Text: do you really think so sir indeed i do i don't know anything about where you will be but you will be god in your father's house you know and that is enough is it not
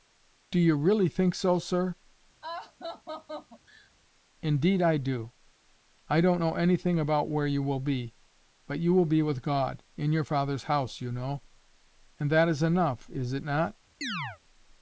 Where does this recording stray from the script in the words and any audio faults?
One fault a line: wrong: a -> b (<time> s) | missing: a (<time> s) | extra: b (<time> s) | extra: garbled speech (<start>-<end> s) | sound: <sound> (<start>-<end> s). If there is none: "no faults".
sound: laugh (2.4-3.9 s)
extra: with (9.2 s)
sound: chirp (14.0-14.4 s)